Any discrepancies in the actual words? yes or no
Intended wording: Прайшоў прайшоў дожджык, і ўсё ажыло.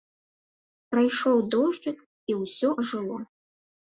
yes